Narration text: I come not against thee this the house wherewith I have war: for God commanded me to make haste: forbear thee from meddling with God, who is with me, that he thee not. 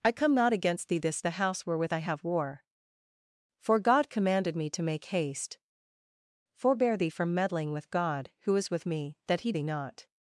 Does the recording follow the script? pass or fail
pass